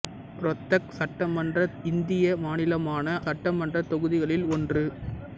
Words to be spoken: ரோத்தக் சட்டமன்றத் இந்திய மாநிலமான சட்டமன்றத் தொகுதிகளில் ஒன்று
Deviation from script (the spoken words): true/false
false